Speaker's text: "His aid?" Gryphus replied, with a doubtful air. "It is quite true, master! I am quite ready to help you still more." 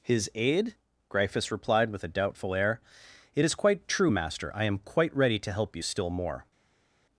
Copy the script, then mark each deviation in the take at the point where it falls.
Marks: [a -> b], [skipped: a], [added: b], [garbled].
"His aid?" Gryphus replied, with a doubtful air. "It is quite true, master! I am quite ready to help you still more."